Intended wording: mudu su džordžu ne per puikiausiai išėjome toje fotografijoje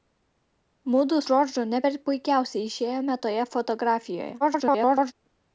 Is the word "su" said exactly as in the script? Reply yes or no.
no